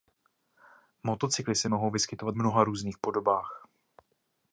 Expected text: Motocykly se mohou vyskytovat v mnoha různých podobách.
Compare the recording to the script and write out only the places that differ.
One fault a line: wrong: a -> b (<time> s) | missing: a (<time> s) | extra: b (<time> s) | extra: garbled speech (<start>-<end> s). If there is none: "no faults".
missing: v (2.4 s)